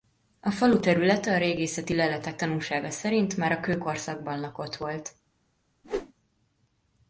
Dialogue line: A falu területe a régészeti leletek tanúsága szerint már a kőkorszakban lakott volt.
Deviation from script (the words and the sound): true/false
true